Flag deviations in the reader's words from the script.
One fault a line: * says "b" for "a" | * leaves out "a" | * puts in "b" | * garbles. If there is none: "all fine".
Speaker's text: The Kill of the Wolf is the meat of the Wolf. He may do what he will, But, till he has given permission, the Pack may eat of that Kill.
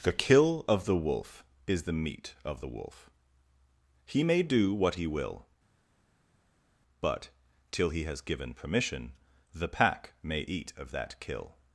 all fine